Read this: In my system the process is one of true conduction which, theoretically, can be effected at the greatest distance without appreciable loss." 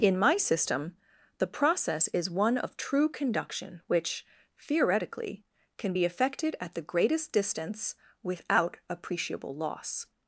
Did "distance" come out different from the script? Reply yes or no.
no